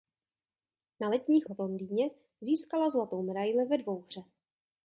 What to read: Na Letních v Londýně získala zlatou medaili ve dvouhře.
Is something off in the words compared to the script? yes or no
no